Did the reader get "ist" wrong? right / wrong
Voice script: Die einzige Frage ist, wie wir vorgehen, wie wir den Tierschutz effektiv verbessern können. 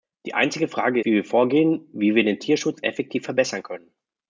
wrong